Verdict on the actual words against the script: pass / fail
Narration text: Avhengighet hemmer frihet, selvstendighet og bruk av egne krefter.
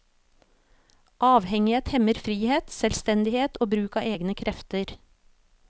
pass